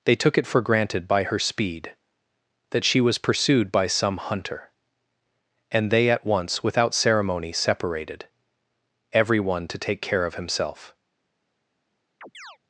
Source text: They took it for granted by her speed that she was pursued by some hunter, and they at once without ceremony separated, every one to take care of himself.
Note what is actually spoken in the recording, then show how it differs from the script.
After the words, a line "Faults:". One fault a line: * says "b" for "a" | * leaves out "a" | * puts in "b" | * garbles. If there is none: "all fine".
They took it for granted by her speed that she was pursued by some hunter, and they at once without ceremony separated, every one to take care of himself.
Faults:
all fine